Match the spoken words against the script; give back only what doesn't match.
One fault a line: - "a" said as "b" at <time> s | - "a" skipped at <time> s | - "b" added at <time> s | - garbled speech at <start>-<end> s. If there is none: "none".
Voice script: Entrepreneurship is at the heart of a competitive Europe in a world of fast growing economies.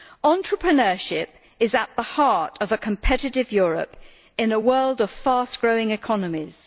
none